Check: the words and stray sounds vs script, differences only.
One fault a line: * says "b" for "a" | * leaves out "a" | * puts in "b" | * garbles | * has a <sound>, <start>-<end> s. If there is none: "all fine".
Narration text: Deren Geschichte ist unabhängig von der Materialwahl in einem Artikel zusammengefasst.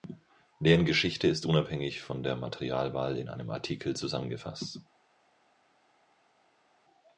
all fine